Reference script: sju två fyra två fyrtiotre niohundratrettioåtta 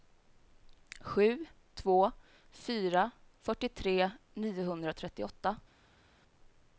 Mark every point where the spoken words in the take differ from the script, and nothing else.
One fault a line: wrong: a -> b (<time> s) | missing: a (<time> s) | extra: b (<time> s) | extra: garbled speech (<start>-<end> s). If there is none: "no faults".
missing: två (3.1 s)